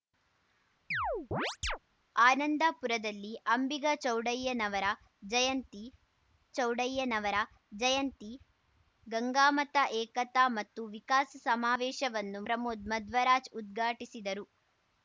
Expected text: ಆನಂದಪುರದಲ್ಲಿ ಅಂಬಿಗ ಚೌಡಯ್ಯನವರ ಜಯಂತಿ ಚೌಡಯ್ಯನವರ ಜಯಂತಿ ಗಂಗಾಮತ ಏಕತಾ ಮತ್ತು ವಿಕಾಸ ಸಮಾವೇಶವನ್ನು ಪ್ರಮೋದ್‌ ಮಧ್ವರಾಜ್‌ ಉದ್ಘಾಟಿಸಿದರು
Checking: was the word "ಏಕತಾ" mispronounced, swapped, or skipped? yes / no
no